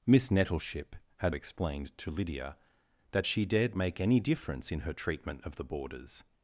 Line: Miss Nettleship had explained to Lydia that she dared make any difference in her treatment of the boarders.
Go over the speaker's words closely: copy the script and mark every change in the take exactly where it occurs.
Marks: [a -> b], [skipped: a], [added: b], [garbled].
Miss Nettleship had explained to Lydia that she dared make any difference in her treatment of the boarders.